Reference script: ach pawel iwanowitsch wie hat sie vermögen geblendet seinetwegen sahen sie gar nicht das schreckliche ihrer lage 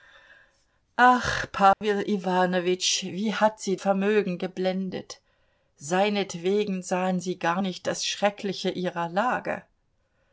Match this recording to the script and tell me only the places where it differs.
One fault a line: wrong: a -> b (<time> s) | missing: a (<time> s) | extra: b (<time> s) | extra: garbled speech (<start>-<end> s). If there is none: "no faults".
no faults